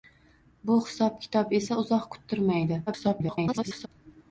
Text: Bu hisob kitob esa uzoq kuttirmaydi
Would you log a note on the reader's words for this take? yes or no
yes